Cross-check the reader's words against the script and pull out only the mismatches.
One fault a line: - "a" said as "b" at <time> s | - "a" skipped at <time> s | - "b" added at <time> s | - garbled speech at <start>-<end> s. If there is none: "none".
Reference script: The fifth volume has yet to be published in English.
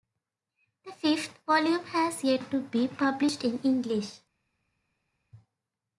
none